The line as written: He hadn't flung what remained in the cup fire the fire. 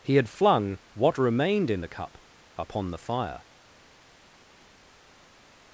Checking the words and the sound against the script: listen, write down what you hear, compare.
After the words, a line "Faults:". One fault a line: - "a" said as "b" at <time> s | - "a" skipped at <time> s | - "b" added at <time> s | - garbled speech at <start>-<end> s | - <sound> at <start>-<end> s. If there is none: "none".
He had flung what remained in the cup upon the fire.
Faults:
- "hadn't" said as "had" at 0.1 s
- "fire" said as "upon" at 2.5 s